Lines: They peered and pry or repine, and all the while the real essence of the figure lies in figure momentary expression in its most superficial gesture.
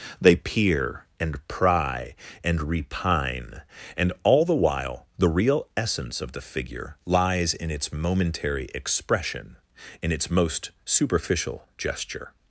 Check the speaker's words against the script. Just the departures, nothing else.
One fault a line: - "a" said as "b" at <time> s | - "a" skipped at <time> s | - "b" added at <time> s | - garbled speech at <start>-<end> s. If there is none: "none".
- "peered" said as "peer" at 0.3 s
- "or" said as "and" at 2.4 s
- "figure" said as "its" at 7.7 s